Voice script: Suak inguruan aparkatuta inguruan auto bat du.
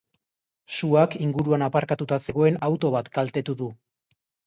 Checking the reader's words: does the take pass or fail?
fail